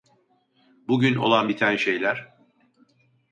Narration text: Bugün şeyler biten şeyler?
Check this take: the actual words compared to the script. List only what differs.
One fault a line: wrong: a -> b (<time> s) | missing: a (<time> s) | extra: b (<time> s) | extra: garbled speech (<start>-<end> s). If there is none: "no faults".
wrong: şeyler -> olan (1.1 s)